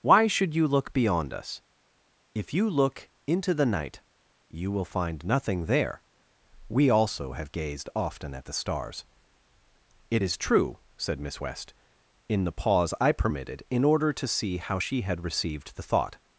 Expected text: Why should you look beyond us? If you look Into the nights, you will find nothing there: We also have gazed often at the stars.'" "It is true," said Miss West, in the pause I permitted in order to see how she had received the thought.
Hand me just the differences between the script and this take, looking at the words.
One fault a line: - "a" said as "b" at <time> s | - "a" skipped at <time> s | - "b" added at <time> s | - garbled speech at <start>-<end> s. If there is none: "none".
- "nights" said as "night" at 3.7 s